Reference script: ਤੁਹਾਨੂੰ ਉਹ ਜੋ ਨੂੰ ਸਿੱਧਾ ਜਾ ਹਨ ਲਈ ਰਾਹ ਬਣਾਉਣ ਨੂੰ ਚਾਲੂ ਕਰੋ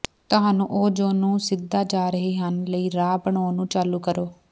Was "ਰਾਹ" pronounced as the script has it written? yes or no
yes